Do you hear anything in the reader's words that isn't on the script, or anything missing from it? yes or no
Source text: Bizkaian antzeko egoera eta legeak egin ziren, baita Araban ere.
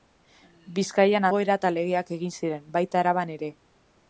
yes